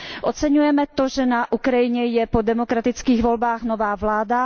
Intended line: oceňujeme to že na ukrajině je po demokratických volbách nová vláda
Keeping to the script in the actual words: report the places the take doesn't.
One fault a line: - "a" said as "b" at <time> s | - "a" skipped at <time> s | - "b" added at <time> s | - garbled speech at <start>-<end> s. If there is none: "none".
none